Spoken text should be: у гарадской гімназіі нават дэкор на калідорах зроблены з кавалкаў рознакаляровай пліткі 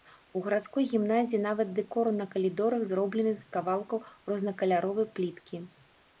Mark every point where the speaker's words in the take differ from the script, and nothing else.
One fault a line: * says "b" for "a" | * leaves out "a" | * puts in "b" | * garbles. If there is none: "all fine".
all fine